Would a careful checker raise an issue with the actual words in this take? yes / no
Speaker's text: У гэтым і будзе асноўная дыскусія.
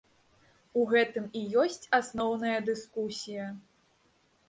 yes